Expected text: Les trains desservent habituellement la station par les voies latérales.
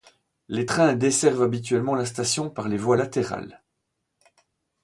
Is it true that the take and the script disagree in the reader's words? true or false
false